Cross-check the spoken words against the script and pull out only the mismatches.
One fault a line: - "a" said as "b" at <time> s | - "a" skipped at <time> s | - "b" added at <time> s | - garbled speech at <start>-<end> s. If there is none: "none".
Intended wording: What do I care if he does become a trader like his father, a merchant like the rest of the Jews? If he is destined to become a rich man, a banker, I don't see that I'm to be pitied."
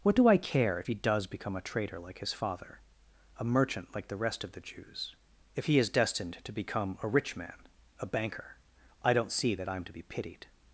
none